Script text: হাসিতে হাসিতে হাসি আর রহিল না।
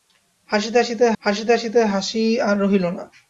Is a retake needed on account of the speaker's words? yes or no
yes